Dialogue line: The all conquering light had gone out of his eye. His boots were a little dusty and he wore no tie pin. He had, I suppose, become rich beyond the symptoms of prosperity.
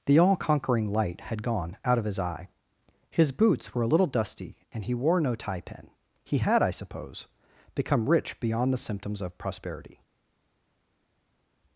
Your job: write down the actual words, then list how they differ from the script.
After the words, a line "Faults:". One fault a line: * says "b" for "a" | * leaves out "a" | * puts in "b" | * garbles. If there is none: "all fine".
The all conquering light had gone out of his eye. His boots were a little dusty and he wore no tie pin. He had, I suppose, become rich beyond the symptoms of prosperity.
Faults:
all fine